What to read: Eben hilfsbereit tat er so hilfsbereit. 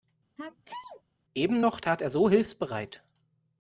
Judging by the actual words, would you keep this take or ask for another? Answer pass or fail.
fail